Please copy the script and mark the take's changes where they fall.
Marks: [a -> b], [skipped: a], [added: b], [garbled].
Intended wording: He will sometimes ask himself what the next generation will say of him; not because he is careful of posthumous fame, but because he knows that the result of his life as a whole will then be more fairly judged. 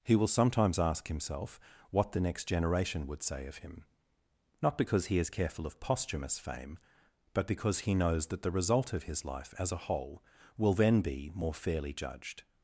He will sometimes ask himself what the next generation [will -> would] say of him; not because he is careful of posthumous fame, but because he knows that the result of his life as a whole will then be more fairly judged.